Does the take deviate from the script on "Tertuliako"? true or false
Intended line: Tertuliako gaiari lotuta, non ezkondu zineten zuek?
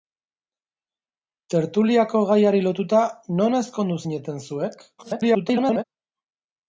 false